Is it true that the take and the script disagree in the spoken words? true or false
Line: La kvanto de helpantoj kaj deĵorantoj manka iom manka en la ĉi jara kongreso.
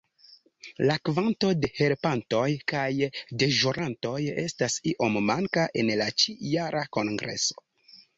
true